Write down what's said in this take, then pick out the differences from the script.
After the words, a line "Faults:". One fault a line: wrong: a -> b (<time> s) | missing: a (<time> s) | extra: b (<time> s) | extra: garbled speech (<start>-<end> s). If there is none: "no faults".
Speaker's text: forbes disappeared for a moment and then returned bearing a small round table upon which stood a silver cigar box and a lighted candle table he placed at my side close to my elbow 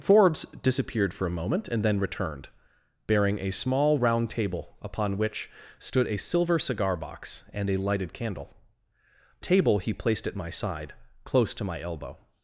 forbes disappeared for a moment and then returned bearing a small round table upon which stood a silver cigar box and a lighted candle table he placed at my side close to my elbow
Faults:
no faults